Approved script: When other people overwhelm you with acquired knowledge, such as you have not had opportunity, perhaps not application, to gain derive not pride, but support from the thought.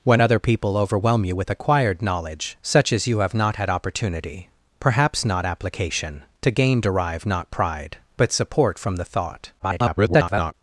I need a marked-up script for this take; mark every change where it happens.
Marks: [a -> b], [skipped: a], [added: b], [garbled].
When other people overwhelm you with acquired knowledge, such as you have not had opportunity, perhaps not application, to gain derive not pride, but support from the thought. [garbled]